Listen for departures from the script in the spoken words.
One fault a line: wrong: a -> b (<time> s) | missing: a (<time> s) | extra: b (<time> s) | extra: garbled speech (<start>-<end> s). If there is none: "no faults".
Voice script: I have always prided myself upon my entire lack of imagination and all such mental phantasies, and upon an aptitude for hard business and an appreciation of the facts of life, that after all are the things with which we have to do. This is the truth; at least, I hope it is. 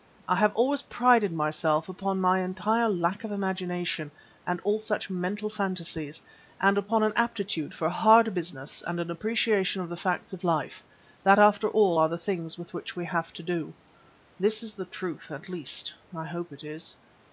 no faults